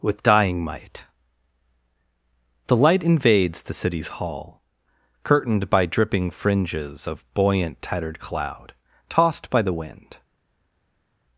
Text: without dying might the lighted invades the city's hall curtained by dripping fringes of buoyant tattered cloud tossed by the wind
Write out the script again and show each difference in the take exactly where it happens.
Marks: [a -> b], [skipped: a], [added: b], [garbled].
[without -> with] dying might the [lighted -> light] invades the city's hall curtained by dripping fringes of buoyant tattered cloud tossed by the wind